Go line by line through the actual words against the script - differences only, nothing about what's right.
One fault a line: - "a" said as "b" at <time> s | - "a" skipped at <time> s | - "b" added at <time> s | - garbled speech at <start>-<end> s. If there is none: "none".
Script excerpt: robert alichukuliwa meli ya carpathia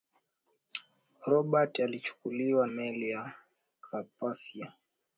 none